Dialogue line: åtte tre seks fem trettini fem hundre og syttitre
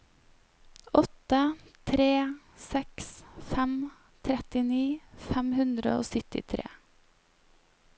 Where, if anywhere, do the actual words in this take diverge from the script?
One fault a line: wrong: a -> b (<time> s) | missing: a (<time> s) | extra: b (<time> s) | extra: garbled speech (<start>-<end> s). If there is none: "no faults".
no faults